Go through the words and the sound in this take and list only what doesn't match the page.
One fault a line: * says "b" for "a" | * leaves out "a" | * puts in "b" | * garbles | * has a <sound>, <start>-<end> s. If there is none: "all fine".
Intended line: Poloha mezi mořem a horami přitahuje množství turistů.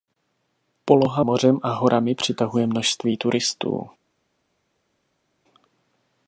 * leaves out "mezi"